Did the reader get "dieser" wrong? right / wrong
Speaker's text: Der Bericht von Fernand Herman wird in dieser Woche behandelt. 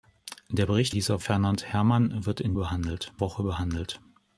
wrong